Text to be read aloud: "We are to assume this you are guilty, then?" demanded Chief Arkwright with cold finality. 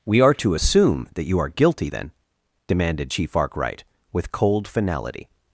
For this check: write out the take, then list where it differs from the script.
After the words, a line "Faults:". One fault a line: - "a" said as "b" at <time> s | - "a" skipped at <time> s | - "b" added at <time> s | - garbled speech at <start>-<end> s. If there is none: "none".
"We are to assume that you are guilty, then?" demanded Chief Arkwright with cold finality.
Faults:
- "this" said as "that" at 1.1 s